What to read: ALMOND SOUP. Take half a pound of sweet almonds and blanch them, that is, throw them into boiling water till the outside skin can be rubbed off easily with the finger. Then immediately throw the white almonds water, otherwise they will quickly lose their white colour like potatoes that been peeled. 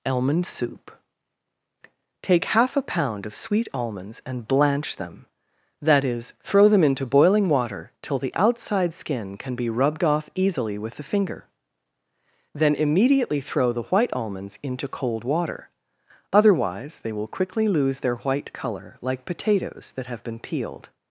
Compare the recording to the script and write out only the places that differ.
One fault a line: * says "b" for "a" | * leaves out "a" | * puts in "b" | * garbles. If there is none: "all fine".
* puts in "into cold"
* puts in "have"